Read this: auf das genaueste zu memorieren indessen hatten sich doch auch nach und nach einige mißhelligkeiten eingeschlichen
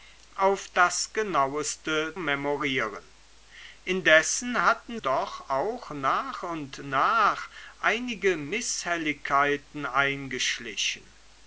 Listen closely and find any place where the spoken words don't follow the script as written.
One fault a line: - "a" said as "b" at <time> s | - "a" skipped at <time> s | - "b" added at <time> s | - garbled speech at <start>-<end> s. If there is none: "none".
- "zu" skipped at 2.2 s
- "sich" skipped at 5.0 s